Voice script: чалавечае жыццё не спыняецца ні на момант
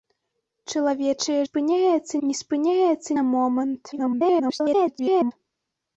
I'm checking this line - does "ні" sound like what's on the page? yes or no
no